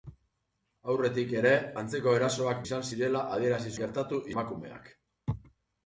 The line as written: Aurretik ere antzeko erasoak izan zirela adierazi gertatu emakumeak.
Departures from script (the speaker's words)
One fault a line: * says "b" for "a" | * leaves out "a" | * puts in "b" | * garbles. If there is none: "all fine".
all fine